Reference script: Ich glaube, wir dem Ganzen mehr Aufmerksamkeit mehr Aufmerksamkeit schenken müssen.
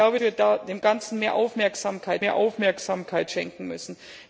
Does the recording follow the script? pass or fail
pass